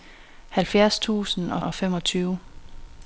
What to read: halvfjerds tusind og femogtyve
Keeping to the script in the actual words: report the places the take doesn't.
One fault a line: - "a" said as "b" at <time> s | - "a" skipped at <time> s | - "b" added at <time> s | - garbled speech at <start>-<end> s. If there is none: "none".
- "og" added at 1.6 s